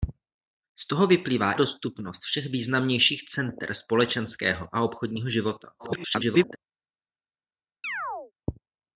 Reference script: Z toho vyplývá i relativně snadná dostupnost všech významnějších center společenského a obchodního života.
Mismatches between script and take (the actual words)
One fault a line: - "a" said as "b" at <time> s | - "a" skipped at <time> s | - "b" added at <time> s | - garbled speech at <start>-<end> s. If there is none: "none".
- "i relativně snadná" skipped at 1.5 s
- garbled speech at 5.8-6.6 s